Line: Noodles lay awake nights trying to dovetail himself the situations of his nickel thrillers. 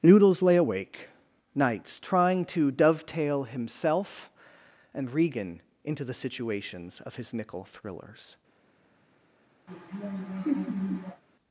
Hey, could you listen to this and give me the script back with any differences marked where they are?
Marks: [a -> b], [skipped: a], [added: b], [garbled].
Noodles lay awake nights trying to dovetail himself [added: and Regan into] the situations of his nickel thrillers.